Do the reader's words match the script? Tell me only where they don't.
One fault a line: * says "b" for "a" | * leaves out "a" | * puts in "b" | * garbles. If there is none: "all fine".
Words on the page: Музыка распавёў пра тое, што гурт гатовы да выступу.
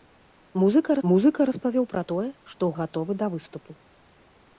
* puts in "музыка"
* leaves out "гурт"